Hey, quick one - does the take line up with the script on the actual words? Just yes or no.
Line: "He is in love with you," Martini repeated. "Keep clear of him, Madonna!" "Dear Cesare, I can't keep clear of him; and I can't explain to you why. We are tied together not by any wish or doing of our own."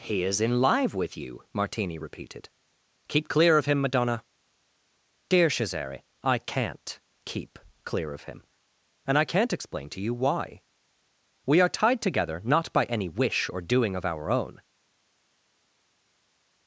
no